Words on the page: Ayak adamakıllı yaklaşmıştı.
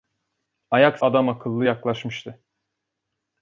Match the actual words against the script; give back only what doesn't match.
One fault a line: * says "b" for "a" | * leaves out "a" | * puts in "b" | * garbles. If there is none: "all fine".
all fine